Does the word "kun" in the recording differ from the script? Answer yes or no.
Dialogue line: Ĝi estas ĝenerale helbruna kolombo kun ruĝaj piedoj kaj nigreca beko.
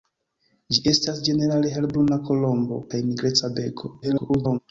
yes